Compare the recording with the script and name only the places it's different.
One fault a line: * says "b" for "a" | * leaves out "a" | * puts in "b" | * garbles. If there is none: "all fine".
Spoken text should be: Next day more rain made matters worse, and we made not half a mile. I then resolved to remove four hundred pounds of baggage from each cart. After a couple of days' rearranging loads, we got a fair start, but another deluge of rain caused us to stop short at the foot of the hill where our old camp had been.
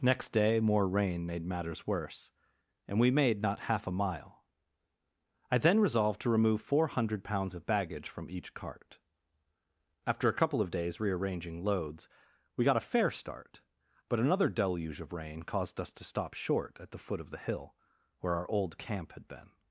all fine